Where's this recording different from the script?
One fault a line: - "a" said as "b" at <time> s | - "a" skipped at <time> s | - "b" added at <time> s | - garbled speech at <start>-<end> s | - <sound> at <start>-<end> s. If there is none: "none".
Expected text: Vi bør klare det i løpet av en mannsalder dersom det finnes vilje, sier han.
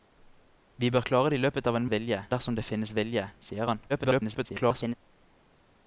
- "mannsalder" said as "vilje" at 1.9 s
- garbled speech at 3.9-5.0 s